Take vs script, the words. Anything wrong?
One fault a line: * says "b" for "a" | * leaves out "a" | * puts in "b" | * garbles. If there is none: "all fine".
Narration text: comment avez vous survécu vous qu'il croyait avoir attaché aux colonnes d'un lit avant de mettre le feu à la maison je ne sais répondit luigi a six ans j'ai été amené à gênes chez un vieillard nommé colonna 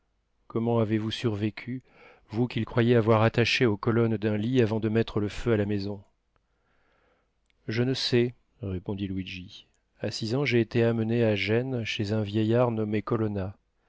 all fine